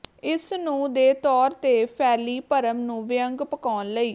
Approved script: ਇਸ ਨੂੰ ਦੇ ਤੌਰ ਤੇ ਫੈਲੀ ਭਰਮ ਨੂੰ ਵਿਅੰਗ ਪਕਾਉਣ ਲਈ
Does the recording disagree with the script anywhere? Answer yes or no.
no